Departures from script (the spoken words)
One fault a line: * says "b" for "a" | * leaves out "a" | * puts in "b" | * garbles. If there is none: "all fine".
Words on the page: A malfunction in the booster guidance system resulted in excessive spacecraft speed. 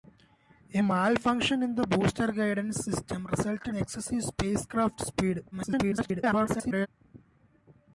* leaves out "in"
* garbles